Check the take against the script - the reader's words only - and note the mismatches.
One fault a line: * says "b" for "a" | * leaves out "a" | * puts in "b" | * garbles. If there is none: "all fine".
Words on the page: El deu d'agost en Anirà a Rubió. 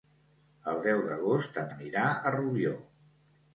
all fine